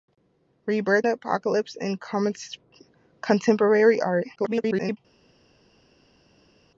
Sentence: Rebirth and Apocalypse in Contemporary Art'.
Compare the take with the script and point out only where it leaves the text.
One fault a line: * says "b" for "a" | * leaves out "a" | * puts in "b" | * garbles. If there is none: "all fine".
* leaves out "and"
* garbles